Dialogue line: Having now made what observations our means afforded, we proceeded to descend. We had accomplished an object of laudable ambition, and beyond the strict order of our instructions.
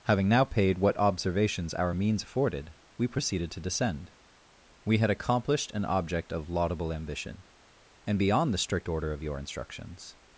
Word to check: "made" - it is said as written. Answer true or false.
false